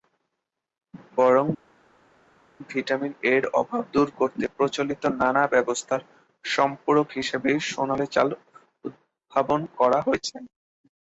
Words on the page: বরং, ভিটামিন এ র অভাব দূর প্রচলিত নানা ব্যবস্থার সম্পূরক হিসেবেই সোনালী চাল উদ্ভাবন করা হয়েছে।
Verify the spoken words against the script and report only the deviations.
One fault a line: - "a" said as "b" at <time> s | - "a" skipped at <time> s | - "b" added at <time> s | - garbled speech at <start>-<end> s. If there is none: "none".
- "করতে" added at 4.2 s